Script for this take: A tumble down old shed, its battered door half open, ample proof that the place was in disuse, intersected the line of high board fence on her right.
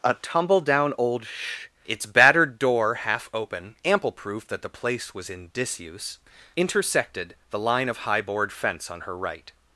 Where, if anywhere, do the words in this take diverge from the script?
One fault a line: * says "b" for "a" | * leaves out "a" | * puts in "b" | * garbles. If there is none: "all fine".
* says "sh" for "shed"